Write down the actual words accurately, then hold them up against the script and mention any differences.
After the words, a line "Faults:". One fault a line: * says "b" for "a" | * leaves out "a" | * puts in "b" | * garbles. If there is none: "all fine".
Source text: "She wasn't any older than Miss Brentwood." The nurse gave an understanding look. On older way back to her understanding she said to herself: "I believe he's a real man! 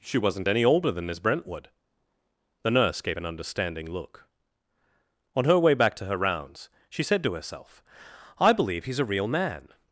"She wasn't any older than Miss Brentwood." The nurse gave an understanding look. On her way back to her rounds she said to herself: "I believe he's a real man!
Faults:
* says "her" for "older"
* says "rounds" for "understanding"